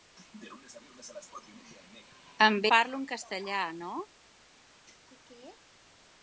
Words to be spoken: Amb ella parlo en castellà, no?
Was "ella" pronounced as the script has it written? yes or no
no